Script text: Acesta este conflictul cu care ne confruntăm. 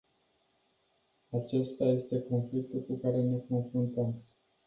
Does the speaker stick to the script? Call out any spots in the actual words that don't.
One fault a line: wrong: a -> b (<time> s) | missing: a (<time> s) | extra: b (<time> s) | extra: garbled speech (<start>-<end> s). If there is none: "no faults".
no faults